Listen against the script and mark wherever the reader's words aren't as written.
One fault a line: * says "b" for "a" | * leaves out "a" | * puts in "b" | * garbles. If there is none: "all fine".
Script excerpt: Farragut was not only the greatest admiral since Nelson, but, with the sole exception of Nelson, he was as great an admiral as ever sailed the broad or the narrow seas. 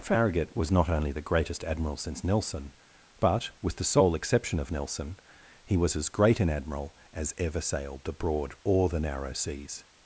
all fine